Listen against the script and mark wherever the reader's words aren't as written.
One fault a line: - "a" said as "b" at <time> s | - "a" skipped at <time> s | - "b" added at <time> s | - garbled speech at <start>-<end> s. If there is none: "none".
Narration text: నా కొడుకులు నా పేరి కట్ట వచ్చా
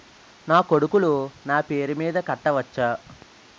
- "మీద" added at 1.9 s